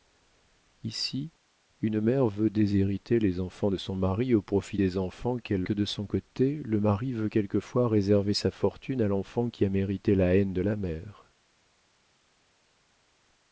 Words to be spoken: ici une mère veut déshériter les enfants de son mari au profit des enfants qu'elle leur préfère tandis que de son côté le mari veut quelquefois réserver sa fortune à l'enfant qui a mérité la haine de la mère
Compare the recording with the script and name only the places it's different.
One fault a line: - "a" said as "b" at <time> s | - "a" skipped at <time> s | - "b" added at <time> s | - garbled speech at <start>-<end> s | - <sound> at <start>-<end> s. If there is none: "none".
- "leur préfère tandis" skipped at 5.6 s